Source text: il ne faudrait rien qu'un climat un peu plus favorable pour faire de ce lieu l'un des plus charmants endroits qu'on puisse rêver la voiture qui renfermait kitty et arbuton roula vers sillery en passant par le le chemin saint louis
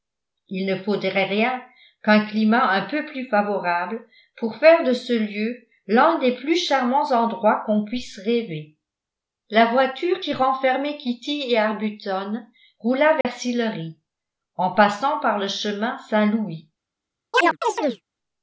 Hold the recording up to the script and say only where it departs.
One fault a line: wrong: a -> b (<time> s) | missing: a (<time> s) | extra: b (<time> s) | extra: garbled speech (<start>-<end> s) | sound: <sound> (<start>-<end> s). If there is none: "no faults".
sound: dropout (13.2-13.2 s)
missing: le (15.5 s)
sound: chirp (17.3-18.0 s)